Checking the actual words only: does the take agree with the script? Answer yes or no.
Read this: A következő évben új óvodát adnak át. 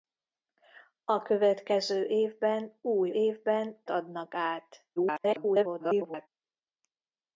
no